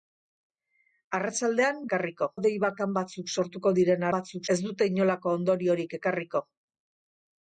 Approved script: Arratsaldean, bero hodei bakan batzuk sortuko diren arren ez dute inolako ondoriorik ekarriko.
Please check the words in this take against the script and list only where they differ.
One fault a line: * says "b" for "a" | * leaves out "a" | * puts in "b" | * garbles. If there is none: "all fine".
* says "ekarriko" for "bero"
* says "batzuk" for "arren"